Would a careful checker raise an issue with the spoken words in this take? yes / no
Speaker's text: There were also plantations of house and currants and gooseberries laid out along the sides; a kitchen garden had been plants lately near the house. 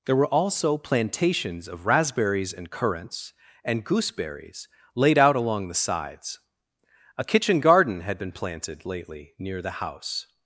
yes